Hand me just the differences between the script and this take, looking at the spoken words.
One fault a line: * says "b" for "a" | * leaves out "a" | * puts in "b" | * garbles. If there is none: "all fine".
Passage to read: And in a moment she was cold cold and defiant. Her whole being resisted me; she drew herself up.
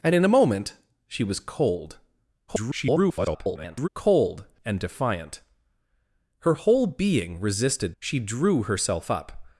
* garbles
* leaves out "me"